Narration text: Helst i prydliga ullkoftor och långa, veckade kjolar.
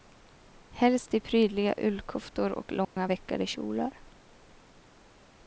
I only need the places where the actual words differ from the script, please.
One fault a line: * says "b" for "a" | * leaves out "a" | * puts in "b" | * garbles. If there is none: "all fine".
all fine